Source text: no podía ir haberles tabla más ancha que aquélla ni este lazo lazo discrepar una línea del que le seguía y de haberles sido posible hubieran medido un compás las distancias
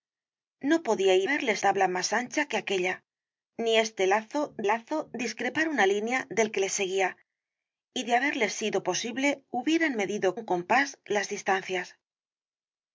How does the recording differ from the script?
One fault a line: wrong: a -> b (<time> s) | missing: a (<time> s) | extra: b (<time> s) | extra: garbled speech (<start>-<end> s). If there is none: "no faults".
no faults